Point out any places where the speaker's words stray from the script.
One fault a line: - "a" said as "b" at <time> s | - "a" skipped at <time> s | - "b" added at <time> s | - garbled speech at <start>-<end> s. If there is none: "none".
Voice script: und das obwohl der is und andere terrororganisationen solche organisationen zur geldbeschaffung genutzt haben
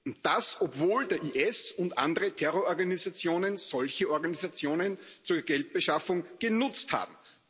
none